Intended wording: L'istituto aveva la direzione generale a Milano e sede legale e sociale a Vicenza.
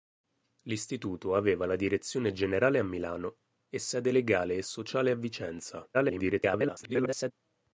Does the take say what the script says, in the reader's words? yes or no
no